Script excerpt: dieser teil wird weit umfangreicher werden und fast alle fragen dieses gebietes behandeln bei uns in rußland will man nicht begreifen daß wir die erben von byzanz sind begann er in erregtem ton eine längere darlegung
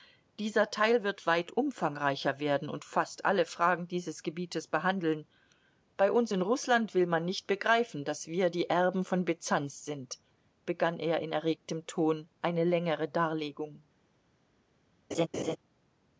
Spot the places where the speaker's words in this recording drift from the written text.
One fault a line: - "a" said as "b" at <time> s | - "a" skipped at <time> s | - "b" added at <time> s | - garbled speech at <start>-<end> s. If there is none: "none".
none